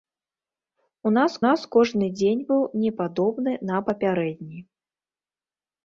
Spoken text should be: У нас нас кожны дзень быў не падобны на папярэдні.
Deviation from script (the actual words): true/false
false